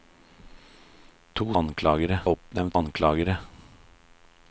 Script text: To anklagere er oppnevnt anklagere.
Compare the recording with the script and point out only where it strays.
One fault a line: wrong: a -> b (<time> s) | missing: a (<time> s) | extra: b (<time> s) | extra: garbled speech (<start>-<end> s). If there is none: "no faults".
no faults